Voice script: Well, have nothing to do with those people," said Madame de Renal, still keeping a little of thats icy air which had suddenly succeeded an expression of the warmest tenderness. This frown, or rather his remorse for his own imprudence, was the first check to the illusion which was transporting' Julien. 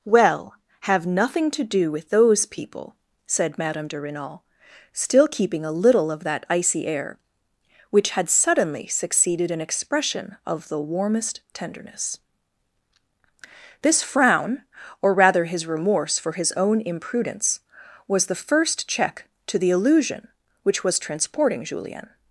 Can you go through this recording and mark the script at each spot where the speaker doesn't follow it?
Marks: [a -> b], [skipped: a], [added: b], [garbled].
Well, have nothing to do with those people," said Madame de Renal, still keeping a little of [thats -> that] icy air which had suddenly succeeded an expression of the warmest tenderness. This frown, or rather his remorse for his own imprudence, was the first check to the illusion which was transporting' Julien.